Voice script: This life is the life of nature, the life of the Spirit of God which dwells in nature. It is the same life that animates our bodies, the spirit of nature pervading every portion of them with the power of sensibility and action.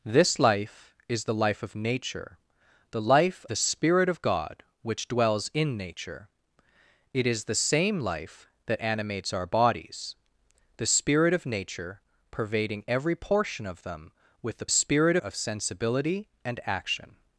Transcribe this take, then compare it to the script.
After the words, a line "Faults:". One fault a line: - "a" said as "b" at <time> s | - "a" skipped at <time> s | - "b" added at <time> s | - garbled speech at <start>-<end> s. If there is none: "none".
This life is the life of nature, the life the Spirit of God which dwells in nature. It is the same life that animates our bodies, the spirit of nature pervading every portion of them with the spirit of sensibility and action.
Faults:
- "of" skipped at 3.5 s
- "power" said as "spirit" at 14.7 s